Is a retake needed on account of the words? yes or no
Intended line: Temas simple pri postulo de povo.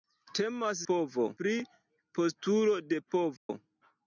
yes